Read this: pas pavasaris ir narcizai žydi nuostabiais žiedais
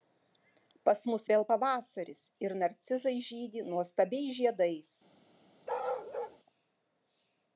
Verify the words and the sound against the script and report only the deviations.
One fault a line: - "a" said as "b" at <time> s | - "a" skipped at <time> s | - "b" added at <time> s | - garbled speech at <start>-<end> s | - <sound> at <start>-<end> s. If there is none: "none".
- "mus vėl" added at 1.1 s
- bark at 5.7-6.4 s